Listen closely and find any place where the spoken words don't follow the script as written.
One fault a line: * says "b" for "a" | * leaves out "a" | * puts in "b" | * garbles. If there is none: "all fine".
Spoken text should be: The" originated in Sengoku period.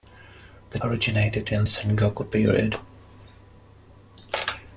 all fine